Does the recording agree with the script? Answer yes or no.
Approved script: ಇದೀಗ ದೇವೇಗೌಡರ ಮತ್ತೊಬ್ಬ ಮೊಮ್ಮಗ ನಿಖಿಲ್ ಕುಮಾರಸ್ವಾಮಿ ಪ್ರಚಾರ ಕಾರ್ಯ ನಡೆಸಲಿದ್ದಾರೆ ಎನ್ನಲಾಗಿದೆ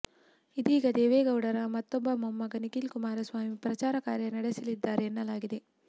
yes